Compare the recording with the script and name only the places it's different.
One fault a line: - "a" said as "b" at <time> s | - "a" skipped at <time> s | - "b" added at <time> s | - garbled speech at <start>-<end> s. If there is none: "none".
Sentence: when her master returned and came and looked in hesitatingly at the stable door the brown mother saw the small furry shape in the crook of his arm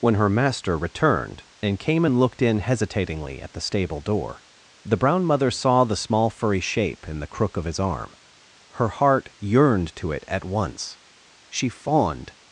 - "her heart yearned to it at once she fawned" added at 8.7 s